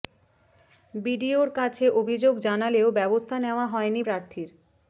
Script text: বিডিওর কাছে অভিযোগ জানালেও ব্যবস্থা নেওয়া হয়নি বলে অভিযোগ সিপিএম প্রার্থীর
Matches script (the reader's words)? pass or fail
fail